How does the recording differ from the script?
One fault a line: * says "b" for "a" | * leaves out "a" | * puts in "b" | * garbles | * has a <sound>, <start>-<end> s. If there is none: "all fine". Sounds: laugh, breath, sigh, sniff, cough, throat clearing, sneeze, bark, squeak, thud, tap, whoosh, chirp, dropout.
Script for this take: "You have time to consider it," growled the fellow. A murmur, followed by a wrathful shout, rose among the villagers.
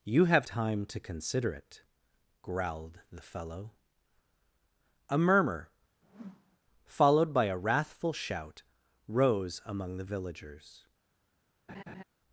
* has a whoosh, 6.0-6.6 s
* has a laugh, 11.7-12.0 s